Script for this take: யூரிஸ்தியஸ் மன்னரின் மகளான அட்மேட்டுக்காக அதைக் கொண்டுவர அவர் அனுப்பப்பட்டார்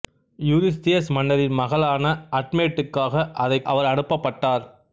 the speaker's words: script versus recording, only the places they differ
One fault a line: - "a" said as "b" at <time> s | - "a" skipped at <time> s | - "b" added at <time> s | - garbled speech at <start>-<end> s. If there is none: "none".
- "கொண்டுவர" skipped at 3.7 s